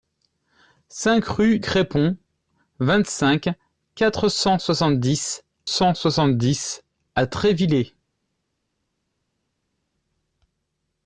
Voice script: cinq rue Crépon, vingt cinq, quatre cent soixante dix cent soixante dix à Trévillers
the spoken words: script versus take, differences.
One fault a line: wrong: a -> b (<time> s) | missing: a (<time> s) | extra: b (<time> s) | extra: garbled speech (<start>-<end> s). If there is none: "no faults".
no faults